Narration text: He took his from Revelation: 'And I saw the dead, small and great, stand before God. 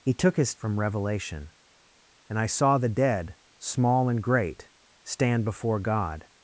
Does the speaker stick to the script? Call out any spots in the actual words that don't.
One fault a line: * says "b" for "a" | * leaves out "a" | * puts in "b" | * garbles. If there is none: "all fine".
all fine